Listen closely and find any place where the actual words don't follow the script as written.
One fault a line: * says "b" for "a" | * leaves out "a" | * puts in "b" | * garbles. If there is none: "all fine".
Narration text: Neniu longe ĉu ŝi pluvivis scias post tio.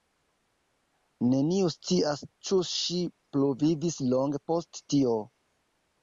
* says "scias" for "longe"
* says "longe" for "scias"